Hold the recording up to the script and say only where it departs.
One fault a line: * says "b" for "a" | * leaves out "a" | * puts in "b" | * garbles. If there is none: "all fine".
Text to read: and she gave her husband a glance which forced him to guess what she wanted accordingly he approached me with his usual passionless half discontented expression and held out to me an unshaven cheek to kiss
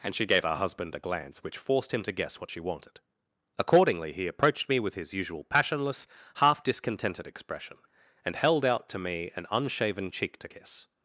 all fine